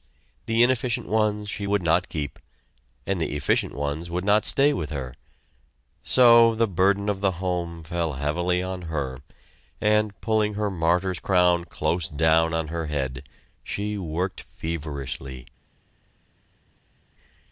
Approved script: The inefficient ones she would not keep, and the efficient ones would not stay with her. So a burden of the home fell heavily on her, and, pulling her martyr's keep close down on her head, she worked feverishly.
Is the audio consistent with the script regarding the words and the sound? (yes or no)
no